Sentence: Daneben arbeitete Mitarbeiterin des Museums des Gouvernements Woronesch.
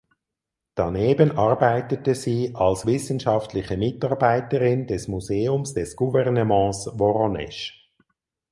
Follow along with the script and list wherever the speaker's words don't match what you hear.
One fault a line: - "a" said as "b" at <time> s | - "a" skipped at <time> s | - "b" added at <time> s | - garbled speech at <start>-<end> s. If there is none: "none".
- "sie als wissenschaftliche" added at 2.1 s